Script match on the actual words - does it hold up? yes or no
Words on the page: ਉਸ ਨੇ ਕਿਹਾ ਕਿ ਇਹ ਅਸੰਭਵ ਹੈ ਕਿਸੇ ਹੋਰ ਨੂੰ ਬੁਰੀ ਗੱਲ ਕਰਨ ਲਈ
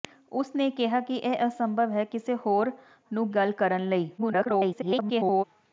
no